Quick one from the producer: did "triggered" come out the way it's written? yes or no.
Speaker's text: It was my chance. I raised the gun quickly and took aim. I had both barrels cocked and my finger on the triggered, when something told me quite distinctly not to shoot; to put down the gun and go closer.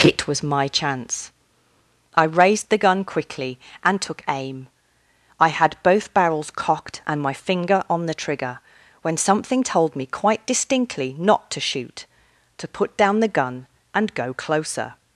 no